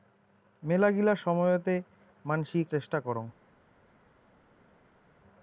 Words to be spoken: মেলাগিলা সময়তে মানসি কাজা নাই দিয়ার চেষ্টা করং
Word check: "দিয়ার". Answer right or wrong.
wrong